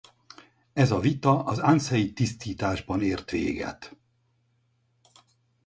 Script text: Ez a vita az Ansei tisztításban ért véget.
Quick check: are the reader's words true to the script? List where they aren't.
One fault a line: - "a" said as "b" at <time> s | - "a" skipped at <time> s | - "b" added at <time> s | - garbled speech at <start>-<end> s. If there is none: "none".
none